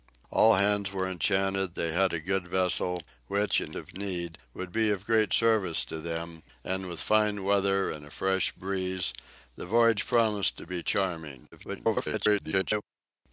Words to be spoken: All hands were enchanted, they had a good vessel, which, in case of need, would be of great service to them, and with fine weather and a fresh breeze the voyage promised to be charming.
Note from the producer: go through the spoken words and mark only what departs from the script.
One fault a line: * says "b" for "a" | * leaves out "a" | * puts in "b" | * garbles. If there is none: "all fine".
* leaves out "case"
* garbles